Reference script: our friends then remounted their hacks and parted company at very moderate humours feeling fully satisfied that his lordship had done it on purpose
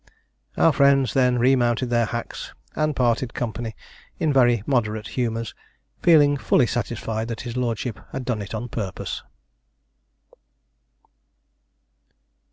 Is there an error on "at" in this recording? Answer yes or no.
yes